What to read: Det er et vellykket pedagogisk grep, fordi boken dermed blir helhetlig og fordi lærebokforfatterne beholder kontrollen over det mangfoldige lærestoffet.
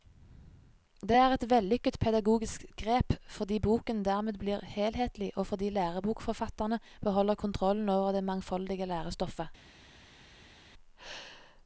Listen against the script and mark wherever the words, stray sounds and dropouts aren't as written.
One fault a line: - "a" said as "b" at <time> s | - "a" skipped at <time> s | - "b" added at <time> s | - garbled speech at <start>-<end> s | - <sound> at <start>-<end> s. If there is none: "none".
none